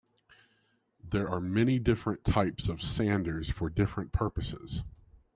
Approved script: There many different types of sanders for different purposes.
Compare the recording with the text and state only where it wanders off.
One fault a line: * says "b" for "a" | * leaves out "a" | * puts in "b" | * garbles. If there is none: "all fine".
* puts in "are"